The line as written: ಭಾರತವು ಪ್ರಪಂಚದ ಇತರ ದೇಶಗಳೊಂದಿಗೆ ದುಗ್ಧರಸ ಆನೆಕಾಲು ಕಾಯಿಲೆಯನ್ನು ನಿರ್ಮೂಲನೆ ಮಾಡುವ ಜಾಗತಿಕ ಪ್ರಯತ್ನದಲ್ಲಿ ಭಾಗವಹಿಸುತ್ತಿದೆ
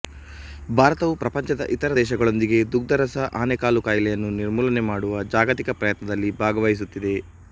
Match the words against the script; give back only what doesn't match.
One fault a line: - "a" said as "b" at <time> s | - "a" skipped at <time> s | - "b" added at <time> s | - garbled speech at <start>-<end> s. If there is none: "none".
none